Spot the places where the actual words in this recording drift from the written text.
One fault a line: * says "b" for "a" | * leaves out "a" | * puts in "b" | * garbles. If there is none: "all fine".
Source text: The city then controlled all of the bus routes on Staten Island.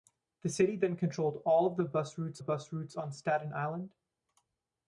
* puts in "bus routes"